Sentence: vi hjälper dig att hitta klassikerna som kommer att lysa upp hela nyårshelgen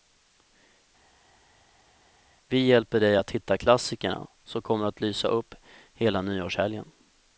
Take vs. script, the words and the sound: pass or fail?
pass